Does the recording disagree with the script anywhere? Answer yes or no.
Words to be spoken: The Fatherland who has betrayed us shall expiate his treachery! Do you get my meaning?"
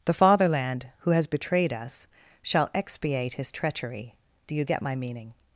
no